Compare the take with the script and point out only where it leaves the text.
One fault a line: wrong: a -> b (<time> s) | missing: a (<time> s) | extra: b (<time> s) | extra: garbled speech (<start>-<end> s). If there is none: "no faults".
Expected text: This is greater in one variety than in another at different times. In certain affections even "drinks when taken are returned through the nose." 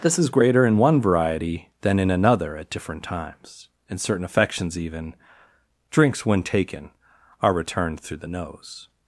no faults